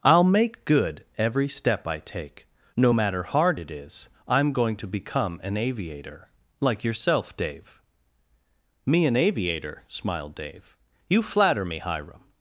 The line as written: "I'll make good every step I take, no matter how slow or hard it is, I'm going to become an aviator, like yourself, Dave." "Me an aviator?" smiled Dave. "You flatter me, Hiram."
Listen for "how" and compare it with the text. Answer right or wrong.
wrong